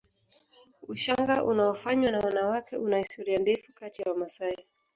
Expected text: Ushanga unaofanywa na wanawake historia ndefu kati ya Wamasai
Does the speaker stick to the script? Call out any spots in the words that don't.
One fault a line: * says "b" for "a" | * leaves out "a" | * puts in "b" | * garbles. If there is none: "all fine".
* puts in "una"